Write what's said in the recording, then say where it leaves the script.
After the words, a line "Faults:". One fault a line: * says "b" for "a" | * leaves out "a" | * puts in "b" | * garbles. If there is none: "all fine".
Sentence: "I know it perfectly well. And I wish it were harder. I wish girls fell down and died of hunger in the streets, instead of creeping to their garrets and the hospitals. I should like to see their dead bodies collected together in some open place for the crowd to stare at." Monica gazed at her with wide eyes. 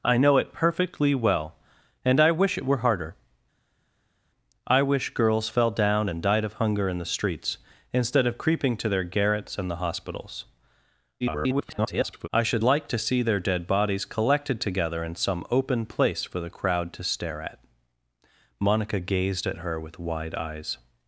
"I know it perfectly well. And I wish it were harder. I wish girls fell down and died of hunger in the streets, instead of creeping to their garrets and the hospitals. [garbled] I should like to see their dead bodies collected together in some open place for the crowd to stare at." Monica gazed at her with wide eyes.
Faults:
* garbles